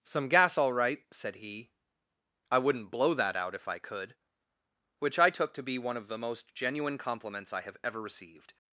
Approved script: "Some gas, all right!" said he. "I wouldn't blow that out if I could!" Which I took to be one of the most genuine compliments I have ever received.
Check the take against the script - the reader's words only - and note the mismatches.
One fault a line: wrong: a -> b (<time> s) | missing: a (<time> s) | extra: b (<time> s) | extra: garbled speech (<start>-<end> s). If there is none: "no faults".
no faults